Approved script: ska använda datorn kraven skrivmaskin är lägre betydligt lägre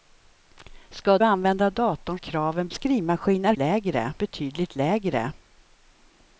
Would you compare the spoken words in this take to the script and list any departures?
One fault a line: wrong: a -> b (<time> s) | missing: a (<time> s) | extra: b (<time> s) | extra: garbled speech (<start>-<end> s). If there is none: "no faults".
no faults